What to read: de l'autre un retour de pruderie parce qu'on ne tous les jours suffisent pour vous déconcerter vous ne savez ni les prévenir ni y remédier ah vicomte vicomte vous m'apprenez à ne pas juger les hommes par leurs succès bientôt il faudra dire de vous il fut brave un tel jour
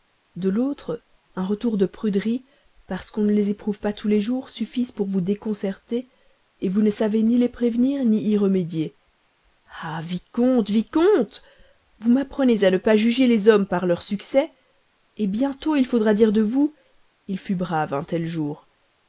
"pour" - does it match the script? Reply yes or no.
yes